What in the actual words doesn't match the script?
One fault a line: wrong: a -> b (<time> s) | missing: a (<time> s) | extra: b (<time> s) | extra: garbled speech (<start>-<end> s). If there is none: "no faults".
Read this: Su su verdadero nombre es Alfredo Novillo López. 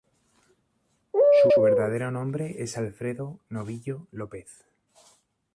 no faults